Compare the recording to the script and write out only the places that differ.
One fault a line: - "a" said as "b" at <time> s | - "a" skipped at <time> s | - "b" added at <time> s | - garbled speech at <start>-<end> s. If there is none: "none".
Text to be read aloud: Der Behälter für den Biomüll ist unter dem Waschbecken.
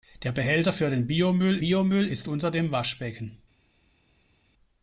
- "Biomüll" added at 1.6 s